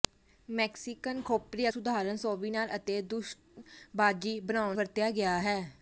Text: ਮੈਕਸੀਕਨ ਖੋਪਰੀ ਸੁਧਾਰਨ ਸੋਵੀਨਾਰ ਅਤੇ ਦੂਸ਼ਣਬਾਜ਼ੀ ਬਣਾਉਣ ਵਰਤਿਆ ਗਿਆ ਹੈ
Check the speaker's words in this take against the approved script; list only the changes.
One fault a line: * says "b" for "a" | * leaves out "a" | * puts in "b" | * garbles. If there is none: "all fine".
all fine